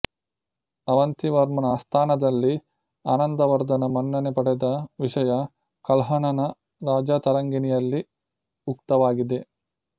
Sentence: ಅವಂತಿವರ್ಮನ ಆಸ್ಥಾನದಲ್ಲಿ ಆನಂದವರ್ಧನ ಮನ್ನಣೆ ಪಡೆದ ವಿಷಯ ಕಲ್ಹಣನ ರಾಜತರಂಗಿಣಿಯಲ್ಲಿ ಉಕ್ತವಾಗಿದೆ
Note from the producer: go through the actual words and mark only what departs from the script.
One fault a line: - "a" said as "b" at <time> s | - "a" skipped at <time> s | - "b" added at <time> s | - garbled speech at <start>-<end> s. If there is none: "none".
none